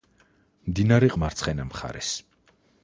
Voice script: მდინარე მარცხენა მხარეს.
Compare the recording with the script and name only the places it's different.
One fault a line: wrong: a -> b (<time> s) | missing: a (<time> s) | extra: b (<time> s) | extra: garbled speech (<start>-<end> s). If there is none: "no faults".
no faults